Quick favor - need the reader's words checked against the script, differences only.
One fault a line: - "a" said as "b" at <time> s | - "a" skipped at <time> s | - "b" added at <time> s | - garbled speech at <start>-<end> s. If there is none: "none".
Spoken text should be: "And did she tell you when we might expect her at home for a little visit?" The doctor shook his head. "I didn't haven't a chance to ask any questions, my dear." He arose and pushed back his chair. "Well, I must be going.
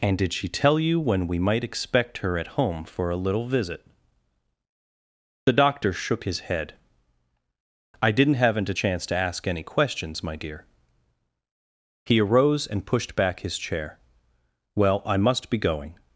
none